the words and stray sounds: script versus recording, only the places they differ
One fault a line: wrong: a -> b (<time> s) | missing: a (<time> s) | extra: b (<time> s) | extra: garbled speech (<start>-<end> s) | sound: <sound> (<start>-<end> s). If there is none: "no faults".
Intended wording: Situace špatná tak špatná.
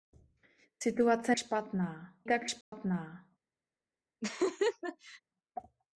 sound: dropout (2.6-2.7 s)
sound: laugh (4.2-5.2 s)